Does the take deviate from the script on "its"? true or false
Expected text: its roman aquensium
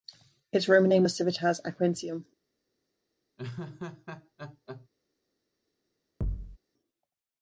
false